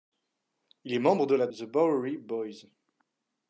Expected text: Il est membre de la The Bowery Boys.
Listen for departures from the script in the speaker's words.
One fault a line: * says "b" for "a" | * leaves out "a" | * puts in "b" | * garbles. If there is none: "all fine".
all fine